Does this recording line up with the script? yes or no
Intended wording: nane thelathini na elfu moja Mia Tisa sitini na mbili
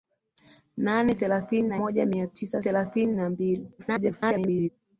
no